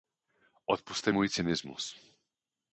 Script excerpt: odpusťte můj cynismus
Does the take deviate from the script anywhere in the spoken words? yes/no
no